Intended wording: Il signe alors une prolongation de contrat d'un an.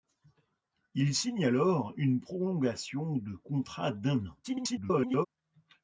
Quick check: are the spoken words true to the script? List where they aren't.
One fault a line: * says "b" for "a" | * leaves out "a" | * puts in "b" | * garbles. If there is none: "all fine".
* garbles